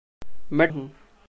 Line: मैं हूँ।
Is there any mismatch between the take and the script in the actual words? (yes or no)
no